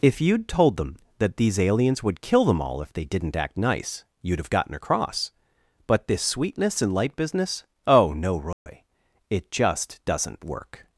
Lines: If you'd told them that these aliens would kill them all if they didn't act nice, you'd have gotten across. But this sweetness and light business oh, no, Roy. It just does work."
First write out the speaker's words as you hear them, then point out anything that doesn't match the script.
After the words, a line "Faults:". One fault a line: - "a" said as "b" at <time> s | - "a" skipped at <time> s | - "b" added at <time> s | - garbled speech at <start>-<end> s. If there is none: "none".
If you'd told them that these aliens would kill them all if they didn't act nice, you'd have gotten across. But this sweetness and light business oh, no, Roy. It just doesn't work."
Faults:
- "does" said as "doesn't" at 10.0 s